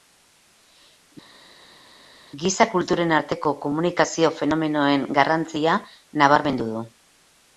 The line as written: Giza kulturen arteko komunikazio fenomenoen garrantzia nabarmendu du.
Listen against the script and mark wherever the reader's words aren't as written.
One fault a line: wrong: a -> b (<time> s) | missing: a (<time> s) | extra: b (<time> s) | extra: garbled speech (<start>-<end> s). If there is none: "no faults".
no faults